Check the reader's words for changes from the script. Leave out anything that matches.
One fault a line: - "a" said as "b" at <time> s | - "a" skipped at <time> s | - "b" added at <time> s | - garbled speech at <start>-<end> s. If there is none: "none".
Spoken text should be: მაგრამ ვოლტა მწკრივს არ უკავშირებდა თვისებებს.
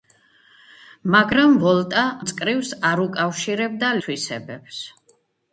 none